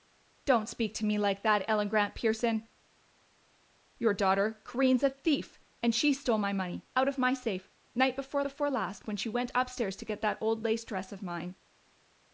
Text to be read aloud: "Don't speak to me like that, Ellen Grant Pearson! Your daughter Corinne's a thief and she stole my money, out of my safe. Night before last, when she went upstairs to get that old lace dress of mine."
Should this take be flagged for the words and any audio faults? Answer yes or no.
yes